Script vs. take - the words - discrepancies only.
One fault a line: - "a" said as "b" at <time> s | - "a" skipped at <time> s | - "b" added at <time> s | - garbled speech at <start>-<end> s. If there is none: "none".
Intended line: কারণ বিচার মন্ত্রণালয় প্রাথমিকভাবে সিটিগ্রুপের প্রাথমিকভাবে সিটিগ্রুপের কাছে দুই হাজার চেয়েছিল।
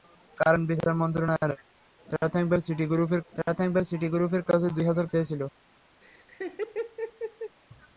none